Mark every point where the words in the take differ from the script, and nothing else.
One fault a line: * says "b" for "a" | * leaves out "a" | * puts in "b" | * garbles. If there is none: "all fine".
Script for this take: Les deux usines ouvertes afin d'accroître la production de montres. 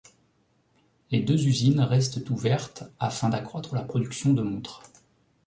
* puts in "restent"